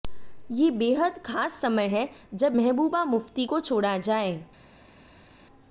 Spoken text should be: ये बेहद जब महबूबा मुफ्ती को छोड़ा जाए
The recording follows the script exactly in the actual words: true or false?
false